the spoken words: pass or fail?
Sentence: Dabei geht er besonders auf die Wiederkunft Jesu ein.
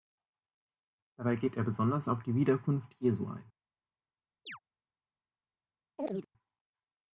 pass